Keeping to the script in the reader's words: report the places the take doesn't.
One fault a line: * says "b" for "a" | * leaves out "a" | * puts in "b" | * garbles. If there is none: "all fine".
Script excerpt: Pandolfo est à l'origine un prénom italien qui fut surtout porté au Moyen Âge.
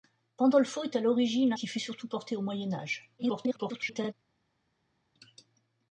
* leaves out "un prénom italien"
* garbles